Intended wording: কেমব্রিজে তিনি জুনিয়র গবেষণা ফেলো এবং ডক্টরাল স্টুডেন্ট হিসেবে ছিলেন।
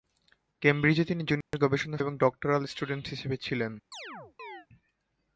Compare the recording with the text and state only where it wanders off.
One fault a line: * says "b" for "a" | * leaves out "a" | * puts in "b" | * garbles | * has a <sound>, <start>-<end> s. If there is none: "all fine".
* has a dropout, 1.4-1.5 s
* leaves out "ফেলো"
* has a chirp, 3.9-4.7 s